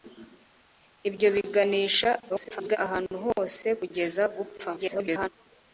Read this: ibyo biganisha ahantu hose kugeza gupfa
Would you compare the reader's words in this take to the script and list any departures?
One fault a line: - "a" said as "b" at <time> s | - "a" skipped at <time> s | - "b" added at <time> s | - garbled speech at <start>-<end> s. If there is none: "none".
- garbled speech at 2.3-2.8 s
- garbled speech at 4.7-5.3 s